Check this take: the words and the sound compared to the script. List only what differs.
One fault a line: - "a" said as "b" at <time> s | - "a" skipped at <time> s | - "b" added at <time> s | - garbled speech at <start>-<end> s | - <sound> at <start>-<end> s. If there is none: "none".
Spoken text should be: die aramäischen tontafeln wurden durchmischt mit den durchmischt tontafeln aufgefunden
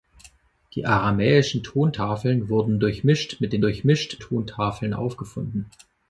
none